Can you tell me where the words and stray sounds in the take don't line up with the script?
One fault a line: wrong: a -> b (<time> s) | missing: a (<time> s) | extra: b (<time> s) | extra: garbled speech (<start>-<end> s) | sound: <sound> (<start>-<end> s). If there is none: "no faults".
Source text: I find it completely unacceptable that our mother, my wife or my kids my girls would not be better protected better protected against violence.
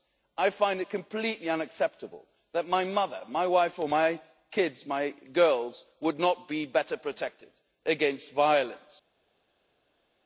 wrong: our -> my (2.7 s)
missing: better protected (7.5 s)